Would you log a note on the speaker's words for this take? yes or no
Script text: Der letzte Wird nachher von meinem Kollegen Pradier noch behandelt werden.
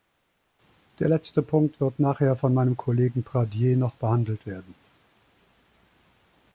yes